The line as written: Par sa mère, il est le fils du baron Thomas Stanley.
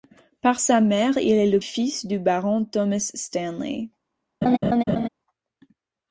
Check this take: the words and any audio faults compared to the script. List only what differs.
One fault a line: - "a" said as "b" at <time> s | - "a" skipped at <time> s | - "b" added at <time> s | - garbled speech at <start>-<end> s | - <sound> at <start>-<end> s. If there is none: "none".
- laugh at 4.4-5.1 s